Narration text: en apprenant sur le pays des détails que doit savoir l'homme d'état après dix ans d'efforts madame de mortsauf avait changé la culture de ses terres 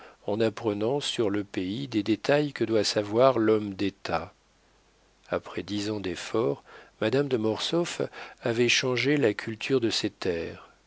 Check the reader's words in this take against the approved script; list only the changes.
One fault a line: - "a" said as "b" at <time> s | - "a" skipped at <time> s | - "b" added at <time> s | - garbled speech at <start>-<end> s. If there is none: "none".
none